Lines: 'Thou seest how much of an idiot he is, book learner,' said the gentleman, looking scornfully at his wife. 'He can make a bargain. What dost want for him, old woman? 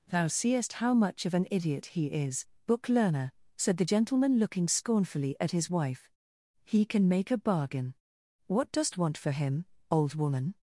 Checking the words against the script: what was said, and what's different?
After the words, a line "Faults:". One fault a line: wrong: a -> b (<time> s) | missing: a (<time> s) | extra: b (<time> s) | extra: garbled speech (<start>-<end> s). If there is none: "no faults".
'Thou seest how much of an idiot he is, book learner,' said the gentleman, looking scornfully at his wife. 'He can make a bargain. What dost want for him, old woman?
Faults:
no faults